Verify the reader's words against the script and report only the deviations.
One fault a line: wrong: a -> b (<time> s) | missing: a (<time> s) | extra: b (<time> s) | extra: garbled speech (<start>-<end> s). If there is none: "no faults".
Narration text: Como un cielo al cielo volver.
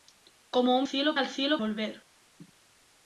no faults